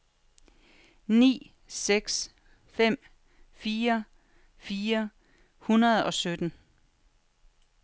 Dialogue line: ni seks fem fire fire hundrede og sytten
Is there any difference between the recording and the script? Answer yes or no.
no